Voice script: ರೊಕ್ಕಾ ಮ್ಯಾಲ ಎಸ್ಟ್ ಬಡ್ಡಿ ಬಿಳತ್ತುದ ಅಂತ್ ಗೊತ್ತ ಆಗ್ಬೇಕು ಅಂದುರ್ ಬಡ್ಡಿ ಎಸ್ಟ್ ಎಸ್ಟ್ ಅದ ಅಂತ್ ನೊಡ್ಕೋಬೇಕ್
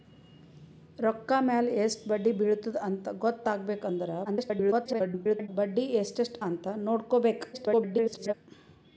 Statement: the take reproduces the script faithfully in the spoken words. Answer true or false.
false